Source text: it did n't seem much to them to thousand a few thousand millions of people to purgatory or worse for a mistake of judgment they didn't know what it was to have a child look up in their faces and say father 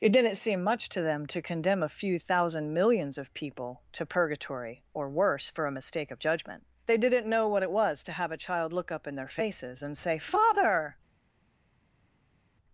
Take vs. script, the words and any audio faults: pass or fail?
fail